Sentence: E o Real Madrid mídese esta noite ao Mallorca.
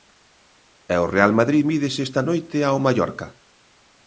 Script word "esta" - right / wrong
right